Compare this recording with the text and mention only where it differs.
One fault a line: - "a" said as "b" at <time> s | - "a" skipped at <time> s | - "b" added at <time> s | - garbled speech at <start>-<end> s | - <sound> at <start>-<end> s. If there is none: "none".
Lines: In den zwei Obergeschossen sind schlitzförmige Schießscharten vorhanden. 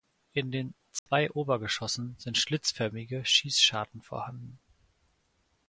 - dropout at 1.0-1.1 s